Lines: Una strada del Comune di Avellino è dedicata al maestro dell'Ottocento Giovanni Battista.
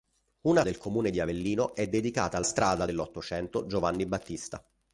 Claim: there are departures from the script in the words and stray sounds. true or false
true